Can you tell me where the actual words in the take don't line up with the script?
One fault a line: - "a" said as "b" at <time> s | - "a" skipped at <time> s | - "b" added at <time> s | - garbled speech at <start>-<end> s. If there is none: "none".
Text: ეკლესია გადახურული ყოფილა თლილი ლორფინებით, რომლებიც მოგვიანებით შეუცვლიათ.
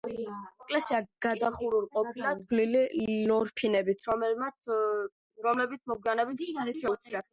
none